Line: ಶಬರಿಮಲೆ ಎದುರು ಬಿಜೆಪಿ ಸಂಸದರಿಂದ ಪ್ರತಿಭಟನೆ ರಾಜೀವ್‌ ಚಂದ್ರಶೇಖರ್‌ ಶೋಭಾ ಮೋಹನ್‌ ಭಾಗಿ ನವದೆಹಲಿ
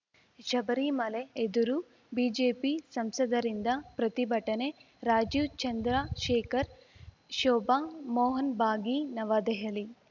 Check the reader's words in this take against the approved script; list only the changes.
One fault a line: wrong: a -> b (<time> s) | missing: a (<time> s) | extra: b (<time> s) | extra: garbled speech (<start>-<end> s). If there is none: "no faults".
no faults